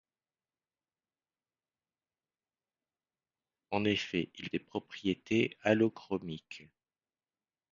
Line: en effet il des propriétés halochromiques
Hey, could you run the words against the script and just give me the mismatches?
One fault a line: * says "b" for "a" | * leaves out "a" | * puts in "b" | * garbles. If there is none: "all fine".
all fine